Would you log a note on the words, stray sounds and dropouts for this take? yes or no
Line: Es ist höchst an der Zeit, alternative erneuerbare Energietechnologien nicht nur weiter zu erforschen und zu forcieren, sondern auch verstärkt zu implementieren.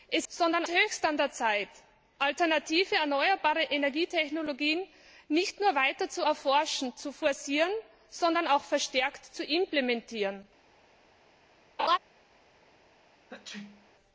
yes